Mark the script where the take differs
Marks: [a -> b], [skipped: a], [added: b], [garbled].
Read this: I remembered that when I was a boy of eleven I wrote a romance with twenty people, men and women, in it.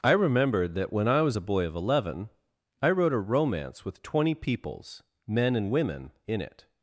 I remembered that when I was a boy of eleven I wrote a romance with twenty [people, -> peoples] men and women, in it.